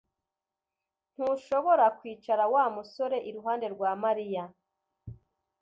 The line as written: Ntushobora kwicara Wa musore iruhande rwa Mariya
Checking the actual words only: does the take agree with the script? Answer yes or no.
yes